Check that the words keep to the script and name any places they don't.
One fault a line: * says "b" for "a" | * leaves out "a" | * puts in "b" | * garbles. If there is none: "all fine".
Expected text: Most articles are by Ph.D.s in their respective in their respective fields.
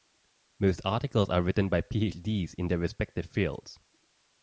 * puts in "written"
* leaves out "in their respective"